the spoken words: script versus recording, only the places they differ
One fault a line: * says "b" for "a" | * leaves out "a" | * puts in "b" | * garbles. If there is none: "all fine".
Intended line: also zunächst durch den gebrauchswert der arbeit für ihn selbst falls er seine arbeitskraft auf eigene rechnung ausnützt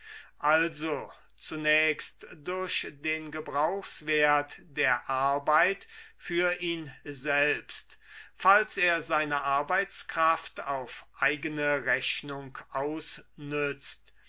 all fine